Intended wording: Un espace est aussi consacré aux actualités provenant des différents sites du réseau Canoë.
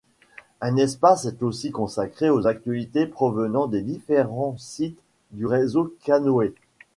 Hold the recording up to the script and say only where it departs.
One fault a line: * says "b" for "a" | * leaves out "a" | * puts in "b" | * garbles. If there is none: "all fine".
all fine